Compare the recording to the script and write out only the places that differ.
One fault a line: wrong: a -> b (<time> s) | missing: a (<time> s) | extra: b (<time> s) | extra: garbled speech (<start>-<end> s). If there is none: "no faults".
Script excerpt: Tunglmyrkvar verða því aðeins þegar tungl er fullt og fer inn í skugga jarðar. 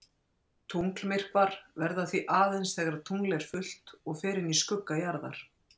no faults